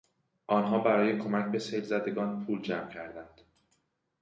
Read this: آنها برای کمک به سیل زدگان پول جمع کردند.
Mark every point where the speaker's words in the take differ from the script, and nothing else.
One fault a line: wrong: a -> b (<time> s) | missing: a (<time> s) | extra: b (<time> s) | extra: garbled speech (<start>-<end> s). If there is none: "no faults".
no faults